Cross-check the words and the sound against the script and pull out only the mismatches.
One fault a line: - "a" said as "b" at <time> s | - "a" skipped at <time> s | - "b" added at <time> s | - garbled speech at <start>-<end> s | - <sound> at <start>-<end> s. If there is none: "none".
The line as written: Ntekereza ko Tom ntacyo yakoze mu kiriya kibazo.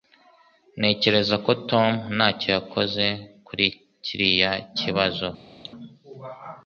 - "mu" said as "kuri" at 3.5 s
- cough at 5.6-5.7 s